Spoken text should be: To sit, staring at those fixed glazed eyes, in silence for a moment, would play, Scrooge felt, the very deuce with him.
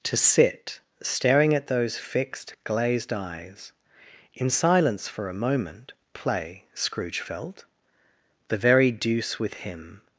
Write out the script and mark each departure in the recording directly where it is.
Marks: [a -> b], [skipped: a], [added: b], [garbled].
To sit, staring at those fixed glazed eyes, in silence for a moment, [skipped: would] play, Scrooge felt, the very deuce with him.